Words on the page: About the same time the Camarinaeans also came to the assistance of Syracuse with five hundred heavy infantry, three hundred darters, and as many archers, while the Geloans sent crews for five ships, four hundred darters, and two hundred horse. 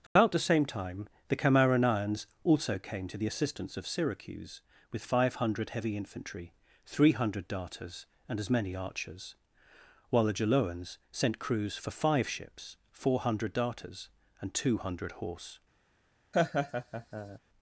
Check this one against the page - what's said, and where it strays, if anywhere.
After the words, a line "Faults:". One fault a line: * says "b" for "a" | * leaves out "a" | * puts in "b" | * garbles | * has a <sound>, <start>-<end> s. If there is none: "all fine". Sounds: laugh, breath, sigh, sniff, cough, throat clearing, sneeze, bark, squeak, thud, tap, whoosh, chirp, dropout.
About the same time the Camarinaeans also came to the assistance of Syracuse with five hundred heavy infantry, three hundred darters, and as many archers, while the Geloans sent crews for five ships, four hundred darters, and two hundred horse.
Faults:
* has a dropout, 0.1-0.2 s
* has a laugh, 16.3-17.4 s